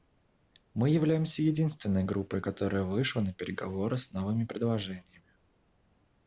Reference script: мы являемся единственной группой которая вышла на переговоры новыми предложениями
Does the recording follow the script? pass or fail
fail